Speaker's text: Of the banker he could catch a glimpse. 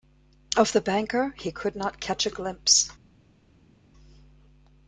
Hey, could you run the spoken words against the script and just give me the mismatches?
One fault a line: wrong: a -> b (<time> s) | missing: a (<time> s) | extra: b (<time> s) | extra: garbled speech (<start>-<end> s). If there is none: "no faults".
extra: not (1.8 s)